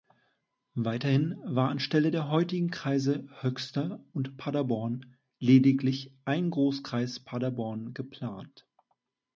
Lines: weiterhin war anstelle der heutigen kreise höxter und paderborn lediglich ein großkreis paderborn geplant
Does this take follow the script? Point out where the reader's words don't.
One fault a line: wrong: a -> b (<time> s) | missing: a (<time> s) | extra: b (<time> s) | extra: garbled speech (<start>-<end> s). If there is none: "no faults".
no faults